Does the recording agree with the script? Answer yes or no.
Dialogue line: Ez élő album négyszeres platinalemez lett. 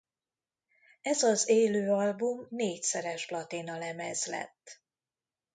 no